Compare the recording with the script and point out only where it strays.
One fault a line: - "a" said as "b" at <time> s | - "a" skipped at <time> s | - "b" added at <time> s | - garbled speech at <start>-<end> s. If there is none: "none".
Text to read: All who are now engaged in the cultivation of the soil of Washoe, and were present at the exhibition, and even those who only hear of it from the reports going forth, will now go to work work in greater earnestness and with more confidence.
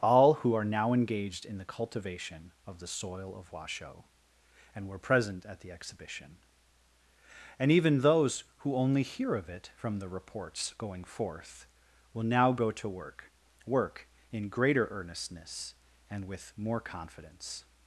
none